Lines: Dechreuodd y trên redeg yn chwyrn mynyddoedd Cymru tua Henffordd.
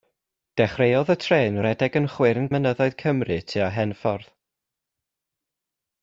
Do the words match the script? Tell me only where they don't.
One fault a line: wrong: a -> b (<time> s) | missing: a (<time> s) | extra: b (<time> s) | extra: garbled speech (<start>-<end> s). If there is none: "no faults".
no faults